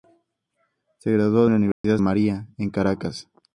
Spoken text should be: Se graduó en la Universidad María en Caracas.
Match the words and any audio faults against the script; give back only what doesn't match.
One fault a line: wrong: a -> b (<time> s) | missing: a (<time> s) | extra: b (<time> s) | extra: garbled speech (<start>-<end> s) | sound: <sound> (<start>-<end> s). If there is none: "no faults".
sound: dropout (1.7-1.8 s)